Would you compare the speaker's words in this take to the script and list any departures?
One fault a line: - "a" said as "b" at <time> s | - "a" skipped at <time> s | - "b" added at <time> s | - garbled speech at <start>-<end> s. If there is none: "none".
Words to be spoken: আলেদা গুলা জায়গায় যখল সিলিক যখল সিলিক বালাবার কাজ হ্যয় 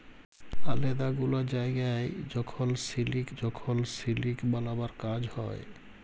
none